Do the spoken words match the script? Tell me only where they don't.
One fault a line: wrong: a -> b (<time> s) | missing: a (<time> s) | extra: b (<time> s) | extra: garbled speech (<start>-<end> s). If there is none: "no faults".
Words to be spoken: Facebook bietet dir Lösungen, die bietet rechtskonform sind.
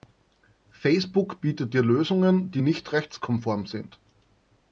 wrong: bietet -> nicht (2.6 s)